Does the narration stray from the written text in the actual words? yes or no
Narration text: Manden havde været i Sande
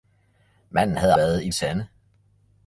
no